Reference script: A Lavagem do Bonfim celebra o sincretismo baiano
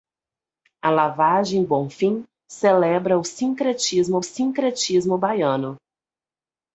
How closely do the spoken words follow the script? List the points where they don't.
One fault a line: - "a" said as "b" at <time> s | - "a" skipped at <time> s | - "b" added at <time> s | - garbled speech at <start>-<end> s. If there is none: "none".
- "do" skipped at 1.6 s
- "sincretismo" added at 4.2 s